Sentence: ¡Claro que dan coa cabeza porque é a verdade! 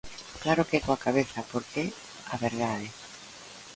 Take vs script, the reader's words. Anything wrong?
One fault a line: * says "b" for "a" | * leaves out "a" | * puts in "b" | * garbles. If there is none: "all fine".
* leaves out "dan"